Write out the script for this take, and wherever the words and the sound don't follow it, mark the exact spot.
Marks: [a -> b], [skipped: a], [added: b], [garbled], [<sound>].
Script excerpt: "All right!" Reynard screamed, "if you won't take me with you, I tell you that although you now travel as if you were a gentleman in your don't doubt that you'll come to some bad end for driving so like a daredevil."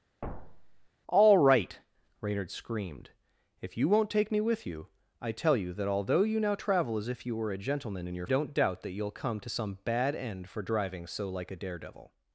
[thud] "All right!" Reynard screamed, "if you won't take me with you, I tell you that although you now travel as if you were a gentleman in your don't doubt that you'll come to some bad end for driving so like a daredevil."